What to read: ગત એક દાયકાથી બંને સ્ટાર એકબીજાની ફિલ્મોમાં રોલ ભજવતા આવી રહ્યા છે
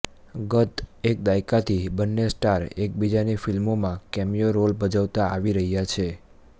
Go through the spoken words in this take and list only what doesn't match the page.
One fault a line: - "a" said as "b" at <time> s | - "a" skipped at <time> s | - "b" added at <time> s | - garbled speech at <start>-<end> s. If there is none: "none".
- "કેમિયો" added at 4.1 s